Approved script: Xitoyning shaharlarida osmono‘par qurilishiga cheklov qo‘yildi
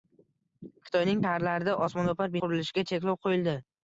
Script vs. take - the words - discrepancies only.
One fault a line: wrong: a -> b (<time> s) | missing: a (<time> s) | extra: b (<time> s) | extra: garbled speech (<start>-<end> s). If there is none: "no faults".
no faults